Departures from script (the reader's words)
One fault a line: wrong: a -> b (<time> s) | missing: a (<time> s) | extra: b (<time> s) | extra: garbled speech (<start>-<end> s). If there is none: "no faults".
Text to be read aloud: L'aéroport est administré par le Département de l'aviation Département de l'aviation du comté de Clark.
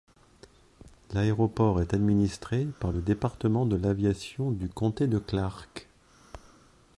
missing: Département de l'aviation (4.5 s)